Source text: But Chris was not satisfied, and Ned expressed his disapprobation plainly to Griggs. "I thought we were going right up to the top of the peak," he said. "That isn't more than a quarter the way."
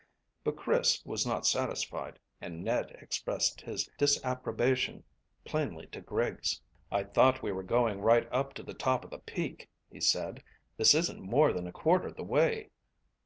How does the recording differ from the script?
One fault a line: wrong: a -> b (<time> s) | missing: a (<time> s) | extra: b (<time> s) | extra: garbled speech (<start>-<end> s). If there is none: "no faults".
wrong: That -> This (10.8 s)